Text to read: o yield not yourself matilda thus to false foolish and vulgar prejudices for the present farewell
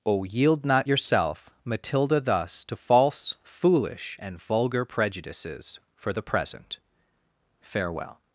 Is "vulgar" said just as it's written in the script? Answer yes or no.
yes